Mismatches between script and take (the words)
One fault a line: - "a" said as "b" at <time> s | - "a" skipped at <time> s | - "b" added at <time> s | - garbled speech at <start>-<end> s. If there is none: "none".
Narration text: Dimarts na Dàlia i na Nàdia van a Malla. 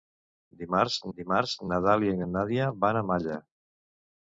- "dimarts" added at 1.2 s